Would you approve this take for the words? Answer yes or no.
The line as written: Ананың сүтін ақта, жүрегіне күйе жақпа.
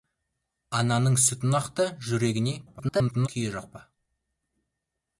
no